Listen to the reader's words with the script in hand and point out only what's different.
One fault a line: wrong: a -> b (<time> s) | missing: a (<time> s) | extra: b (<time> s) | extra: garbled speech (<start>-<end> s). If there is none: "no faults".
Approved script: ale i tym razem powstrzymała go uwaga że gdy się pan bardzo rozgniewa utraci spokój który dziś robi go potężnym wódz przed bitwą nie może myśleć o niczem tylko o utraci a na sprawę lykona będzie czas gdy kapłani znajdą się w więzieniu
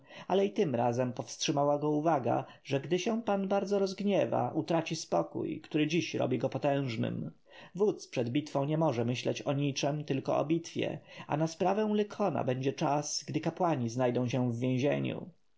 wrong: utraci -> bitwie (10.4 s)